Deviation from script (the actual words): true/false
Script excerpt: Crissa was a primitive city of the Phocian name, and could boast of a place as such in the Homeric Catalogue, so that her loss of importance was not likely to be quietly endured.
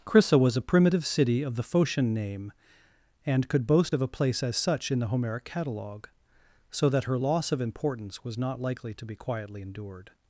false